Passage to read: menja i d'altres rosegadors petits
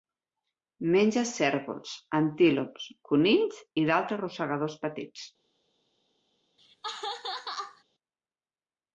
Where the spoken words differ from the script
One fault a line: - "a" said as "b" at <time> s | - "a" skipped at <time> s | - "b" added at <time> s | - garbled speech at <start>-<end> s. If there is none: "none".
- "cérvols antílops conills" added at 1.3 s